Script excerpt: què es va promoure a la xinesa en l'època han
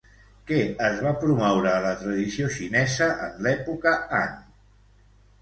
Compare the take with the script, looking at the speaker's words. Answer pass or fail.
fail